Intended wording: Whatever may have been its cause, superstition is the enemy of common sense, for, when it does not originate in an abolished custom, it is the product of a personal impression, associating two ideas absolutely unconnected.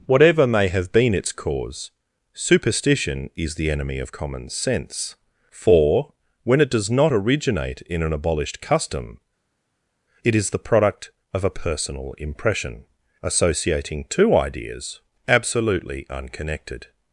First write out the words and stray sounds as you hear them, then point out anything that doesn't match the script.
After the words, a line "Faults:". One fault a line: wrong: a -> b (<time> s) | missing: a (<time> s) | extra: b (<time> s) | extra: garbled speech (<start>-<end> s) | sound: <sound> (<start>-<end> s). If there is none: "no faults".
Whatever may have been its cause, superstition is the enemy of common sense, for, when it does not originate in an abolished custom, it is the product of a personal impression, associating two ideas absolutely unconnected.
Faults:
no faults